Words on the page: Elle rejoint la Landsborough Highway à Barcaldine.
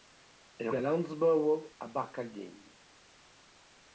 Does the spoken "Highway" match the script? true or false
false